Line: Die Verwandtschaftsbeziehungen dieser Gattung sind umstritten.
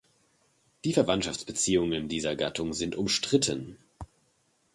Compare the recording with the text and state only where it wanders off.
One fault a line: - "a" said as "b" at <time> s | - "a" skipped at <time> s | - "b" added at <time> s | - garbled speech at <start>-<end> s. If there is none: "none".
none